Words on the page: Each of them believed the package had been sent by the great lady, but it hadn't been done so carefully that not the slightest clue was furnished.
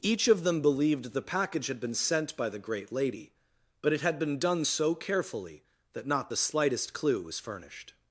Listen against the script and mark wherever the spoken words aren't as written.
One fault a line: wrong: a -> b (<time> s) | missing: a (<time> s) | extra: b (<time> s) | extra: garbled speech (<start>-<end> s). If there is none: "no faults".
wrong: hadn't -> had (4.0 s)